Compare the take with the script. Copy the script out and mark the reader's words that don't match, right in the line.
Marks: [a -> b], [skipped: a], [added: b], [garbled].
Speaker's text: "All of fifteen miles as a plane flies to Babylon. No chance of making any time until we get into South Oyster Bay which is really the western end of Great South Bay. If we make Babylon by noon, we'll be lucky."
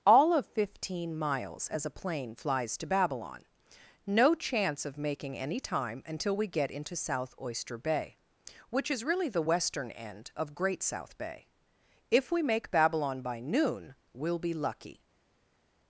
"All of fifteen miles as a plane flies to Babylon. No chance of making any time until we get into South Oyster Bay which is really the western end of Great South Bay. If we make Babylon by noon, we'll be lucky."